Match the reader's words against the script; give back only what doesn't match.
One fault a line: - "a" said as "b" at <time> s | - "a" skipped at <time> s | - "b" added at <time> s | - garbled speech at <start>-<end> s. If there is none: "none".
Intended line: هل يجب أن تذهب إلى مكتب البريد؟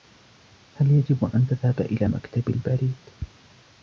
none